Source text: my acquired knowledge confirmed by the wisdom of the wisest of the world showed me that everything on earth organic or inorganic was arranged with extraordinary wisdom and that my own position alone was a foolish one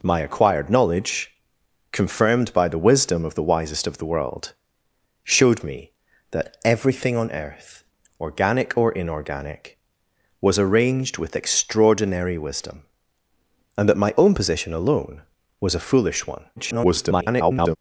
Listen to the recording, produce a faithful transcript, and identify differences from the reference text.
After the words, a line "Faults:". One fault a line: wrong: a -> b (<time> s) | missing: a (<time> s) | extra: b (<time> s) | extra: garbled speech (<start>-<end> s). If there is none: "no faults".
my acquired knowledge confirmed by the wisdom of the wisest of the world showed me that everything on earth organic or inorganic was arranged with extraordinary wisdom and that my own position alone was a foolish one [garbled]
Faults:
extra: garbled speech (16.6-17.8 s)